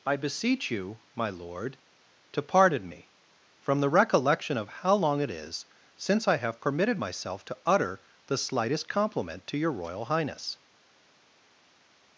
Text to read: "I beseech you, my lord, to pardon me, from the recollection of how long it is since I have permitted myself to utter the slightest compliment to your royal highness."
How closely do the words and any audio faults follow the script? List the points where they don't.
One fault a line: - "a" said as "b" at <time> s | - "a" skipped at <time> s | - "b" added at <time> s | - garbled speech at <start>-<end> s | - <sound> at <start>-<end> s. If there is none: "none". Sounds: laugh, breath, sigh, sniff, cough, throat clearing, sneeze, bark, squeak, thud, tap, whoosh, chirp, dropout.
none